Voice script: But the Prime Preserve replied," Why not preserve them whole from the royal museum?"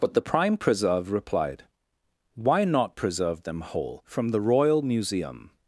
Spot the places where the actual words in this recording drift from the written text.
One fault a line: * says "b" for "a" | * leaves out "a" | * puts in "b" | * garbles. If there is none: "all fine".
all fine